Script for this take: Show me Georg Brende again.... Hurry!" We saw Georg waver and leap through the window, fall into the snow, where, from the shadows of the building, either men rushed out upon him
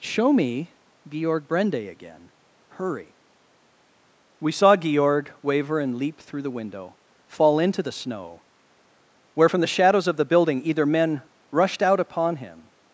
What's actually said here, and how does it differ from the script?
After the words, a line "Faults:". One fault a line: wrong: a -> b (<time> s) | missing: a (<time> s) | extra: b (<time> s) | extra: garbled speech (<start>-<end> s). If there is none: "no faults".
Show me Georg Brende again.... Hurry!" We saw Georg waver and leap through the window, fall into the snow, where, from the shadows of the building, either men rushed out upon him
Faults:
no faults